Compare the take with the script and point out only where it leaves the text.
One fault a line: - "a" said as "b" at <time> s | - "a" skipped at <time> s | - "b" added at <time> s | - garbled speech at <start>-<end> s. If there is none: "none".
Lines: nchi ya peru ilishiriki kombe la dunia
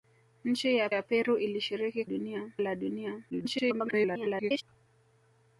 - "ya" added at 0.9 s
- "kombe" said as "dunia" at 2.0 s
- garbled speech at 3.3-4.6 s